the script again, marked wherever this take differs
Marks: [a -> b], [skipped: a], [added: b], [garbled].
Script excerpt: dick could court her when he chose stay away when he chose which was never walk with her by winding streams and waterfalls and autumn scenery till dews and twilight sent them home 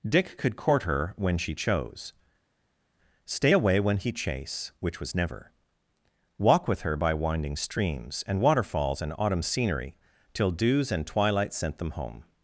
dick could court her when [he -> she] chose stay away when he [chose -> chase] which was never walk with her by winding streams and waterfalls and autumn scenery till dews and twilight sent them home